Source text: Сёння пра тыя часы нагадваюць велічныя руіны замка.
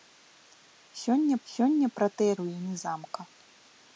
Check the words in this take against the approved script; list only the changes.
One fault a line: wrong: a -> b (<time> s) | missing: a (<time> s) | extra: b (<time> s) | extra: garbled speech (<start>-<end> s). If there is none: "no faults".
extra: сёння (1.5 s)
missing: часы нагадваюць велічныя (2.3 s)